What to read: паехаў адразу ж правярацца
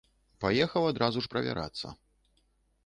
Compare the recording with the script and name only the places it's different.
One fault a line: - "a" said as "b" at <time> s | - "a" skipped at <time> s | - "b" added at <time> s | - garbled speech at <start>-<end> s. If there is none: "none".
none